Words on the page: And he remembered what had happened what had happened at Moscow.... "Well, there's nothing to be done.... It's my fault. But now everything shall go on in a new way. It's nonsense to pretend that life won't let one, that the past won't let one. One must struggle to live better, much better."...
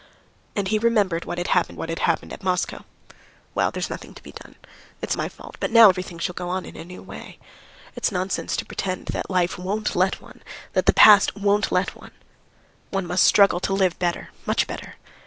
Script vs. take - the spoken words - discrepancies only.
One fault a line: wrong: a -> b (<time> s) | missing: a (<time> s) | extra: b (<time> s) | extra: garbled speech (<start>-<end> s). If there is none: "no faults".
no faults